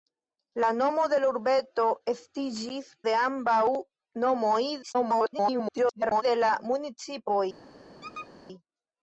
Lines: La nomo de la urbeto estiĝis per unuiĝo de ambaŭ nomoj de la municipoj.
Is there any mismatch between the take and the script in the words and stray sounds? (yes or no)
yes